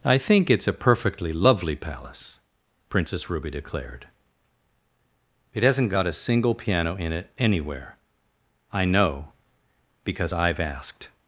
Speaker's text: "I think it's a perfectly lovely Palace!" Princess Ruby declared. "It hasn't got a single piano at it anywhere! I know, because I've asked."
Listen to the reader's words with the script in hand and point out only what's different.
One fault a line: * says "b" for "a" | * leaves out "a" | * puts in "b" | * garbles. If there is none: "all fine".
* says "in" for "at"